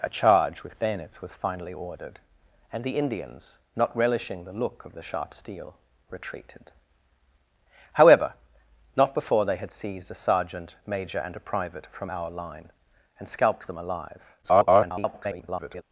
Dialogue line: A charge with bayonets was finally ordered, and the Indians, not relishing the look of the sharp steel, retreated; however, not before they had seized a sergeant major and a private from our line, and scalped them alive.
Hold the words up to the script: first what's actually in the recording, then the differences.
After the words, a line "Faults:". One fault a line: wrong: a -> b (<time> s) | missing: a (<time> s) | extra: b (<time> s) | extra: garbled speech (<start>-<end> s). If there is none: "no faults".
A charge with bayonets was finally ordered, and the Indians, not relishing the look of the sharp steel, retreated; however, not before they had seized a sergeant major and a private from our line, and scalped them alive. [garbled]
Faults:
extra: garbled speech (14.4-15.8 s)